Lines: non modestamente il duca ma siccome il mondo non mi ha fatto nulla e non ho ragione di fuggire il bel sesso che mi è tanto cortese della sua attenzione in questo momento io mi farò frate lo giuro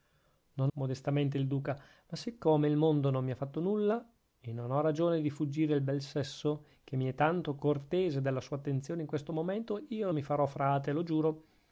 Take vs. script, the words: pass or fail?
pass